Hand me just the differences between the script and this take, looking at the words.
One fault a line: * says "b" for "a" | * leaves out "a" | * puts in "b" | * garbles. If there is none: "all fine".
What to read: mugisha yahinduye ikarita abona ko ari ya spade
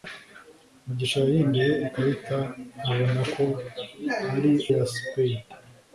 all fine